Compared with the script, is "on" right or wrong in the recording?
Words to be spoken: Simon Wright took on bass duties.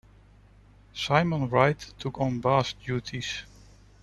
right